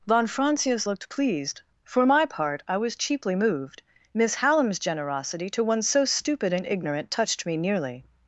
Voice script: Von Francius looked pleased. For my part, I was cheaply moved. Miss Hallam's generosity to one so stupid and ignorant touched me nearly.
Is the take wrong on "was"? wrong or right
right